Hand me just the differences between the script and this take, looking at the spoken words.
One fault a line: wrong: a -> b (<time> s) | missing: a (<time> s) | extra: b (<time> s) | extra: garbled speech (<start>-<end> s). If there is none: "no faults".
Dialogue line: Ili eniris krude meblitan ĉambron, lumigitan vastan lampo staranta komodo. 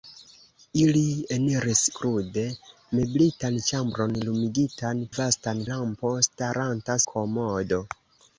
no faults